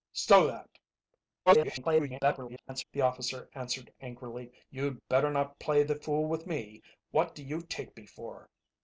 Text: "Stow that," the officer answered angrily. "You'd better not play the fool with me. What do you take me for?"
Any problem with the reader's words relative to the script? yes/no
yes